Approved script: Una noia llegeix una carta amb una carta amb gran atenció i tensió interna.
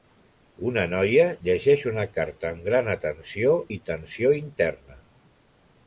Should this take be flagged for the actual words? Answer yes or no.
yes